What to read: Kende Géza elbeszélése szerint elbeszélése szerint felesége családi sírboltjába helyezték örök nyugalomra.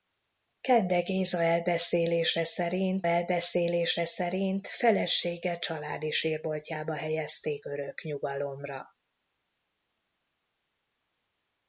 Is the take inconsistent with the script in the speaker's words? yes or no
no